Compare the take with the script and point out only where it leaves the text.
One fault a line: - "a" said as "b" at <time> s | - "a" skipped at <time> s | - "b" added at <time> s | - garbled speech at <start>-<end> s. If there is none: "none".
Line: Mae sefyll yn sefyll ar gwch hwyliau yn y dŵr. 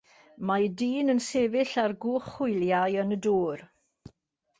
- "sefyll" said as "dyn" at 0.8 s